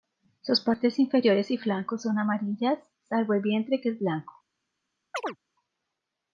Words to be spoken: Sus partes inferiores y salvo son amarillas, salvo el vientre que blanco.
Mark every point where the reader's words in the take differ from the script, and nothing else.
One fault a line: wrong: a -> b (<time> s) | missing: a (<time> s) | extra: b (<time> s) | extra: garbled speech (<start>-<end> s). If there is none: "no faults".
wrong: salvo -> flancos (1.6 s)
extra: es (3.9 s)